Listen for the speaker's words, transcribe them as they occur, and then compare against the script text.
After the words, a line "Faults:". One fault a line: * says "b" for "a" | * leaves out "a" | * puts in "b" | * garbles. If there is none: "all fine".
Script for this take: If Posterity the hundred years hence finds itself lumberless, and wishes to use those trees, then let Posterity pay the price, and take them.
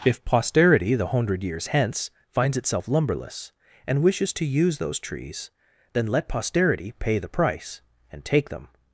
If Posterity the hundred years hence finds itself lumberless, and wishes to use those trees, then let Posterity pay the price, and take them.
Faults:
all fine